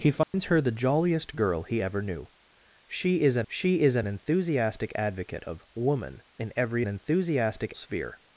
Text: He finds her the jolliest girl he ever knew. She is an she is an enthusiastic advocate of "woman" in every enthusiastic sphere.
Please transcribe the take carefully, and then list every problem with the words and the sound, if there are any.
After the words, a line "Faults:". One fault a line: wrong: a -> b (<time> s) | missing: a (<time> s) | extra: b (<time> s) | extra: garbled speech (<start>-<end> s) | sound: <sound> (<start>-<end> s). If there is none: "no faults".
He finds her the jolliest girl he ever knew. She is an she is an enthusiastic advocate of "woman" in every enthusiastic sphere.
Faults:
sound: dropout (0.2-0.3 s)